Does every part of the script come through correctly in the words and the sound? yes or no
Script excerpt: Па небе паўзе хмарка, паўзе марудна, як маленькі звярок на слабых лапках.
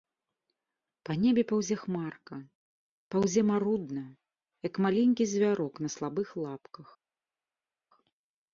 yes